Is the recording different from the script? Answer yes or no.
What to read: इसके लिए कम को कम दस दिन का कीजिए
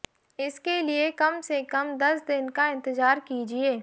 yes